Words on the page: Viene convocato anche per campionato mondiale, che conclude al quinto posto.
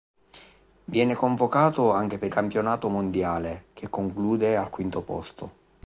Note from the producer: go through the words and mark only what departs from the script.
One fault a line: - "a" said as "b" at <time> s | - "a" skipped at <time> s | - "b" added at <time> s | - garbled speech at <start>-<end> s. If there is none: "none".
none